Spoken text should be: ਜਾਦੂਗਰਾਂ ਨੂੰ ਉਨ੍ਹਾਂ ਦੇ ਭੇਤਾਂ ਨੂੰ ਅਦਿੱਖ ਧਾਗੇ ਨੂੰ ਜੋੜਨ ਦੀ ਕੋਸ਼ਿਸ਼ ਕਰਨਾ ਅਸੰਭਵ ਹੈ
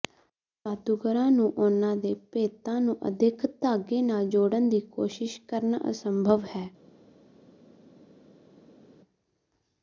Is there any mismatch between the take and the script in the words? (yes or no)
yes